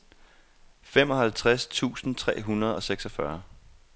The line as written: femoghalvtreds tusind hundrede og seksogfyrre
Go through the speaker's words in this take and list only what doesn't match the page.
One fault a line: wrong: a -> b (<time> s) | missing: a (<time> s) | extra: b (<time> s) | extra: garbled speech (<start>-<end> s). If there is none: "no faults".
extra: tre (2.1 s)